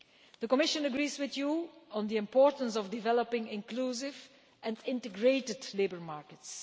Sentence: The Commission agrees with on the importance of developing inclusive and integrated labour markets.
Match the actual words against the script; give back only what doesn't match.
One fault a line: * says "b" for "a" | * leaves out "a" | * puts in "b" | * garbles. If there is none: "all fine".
* puts in "you"